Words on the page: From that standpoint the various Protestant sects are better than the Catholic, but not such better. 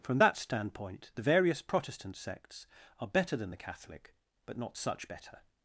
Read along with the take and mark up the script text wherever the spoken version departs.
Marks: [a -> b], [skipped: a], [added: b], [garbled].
From that standpoint the various Protestant sects are better than the Catholic, but not such better.